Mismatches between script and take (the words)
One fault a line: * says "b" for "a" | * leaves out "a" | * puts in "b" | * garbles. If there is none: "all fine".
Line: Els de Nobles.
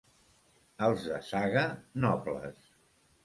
* puts in "Saga"